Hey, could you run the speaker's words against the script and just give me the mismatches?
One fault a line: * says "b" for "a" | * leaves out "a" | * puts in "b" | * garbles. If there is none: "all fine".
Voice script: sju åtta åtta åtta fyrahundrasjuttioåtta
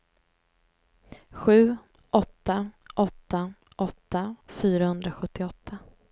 all fine